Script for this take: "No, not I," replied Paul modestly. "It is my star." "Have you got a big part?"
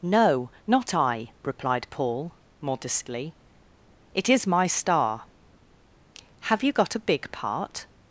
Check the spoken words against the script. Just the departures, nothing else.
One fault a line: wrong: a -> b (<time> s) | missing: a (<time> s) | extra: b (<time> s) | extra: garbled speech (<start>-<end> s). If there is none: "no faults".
no faults